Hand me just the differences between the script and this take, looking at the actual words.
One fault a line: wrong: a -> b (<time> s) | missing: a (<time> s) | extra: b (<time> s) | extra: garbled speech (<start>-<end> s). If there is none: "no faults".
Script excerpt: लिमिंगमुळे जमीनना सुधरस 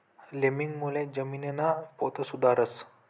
extra: पोत (2.0 s)